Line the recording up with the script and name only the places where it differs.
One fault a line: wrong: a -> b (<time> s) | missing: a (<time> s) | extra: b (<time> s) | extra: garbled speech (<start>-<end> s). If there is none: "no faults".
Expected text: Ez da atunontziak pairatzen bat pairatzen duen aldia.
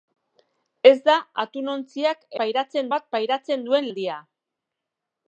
no faults